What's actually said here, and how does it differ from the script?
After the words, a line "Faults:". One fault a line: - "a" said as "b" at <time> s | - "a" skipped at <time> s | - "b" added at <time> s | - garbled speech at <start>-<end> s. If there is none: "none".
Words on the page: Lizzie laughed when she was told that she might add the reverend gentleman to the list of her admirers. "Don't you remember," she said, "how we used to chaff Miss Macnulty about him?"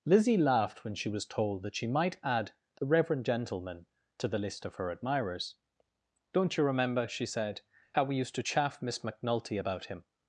Lizzie laughed when she was told that she might add the reverend gentleman to the list of her admirers. "Don't you remember," she said, "how we used to chaff Miss Macnulty about him?"
Faults:
none